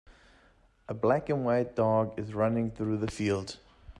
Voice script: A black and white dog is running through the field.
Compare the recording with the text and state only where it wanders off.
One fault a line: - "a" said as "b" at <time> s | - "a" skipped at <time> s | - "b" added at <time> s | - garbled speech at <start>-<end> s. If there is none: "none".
none